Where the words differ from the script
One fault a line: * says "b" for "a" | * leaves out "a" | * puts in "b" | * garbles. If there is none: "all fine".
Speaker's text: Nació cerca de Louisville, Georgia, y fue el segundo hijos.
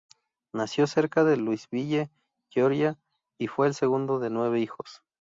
* puts in "de nueve"